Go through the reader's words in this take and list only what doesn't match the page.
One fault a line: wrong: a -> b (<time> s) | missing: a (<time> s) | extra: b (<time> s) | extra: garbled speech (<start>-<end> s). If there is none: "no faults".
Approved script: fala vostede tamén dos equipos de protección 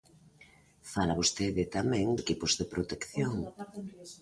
missing: dos (2.1 s)